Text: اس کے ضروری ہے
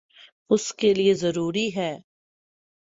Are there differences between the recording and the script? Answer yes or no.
yes